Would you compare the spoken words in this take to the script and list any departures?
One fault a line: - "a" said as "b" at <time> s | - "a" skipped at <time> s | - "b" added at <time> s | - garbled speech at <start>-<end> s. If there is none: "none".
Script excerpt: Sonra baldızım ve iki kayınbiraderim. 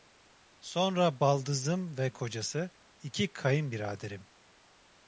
- "kocası" added at 2.1 s